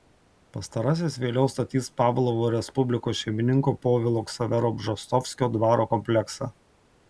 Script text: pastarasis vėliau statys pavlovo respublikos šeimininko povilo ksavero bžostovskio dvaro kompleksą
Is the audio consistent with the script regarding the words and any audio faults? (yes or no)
yes